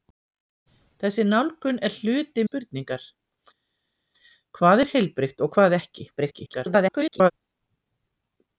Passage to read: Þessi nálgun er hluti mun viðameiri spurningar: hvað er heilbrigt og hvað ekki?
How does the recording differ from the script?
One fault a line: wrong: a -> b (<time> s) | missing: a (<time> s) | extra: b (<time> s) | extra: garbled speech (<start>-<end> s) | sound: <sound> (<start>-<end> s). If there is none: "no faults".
missing: mun viðameiri (2.5 s)
extra: garbled speech (6.2-7.3 s)